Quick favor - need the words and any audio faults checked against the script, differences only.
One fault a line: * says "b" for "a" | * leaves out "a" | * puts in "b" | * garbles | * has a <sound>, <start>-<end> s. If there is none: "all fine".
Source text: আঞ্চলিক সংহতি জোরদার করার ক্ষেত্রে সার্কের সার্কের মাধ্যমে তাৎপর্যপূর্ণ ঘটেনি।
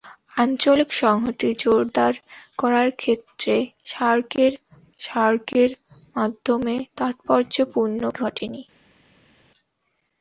all fine